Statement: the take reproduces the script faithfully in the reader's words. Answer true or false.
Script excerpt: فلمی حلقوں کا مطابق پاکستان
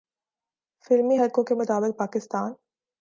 false